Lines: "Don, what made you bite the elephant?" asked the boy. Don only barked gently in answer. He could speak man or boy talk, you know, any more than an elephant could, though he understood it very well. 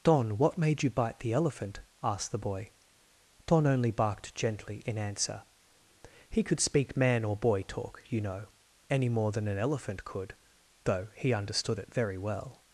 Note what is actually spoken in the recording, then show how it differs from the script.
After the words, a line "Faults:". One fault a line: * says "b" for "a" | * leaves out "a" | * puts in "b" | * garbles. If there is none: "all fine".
"Don, what made you bite the elephant?" asked the boy. Don only barked gently in answer. He could speak man or boy talk, you know, any more than an elephant could, though he understood it very well.
Faults:
all fine